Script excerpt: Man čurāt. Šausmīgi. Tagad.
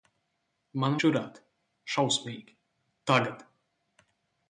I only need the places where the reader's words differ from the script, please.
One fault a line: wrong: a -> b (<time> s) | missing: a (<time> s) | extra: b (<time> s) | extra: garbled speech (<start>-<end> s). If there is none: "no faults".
no faults